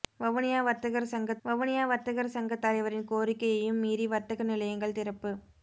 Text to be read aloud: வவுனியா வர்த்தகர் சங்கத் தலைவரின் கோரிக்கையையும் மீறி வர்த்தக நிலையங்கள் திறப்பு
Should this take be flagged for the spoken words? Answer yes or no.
yes